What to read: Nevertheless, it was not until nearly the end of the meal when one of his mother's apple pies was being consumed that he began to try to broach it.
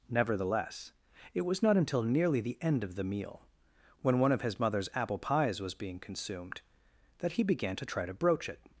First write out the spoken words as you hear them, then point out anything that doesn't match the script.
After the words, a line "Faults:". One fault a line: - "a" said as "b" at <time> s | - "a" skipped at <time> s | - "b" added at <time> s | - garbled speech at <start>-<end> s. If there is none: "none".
Nevertheless, it was not until nearly the end of the meal when one of his mother's apple pies was being consumed that he began to try to broach it.
Faults:
none